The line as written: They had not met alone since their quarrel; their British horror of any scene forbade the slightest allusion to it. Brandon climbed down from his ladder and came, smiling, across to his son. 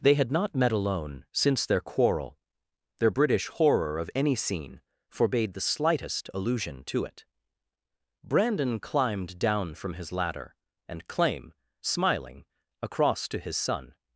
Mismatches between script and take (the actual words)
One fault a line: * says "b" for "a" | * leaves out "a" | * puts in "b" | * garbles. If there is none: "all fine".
* says "claim" for "came"